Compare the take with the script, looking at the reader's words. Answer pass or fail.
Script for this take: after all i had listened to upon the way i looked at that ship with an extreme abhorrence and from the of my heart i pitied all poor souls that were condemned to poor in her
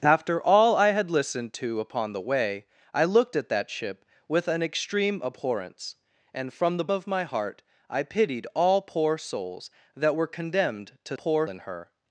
pass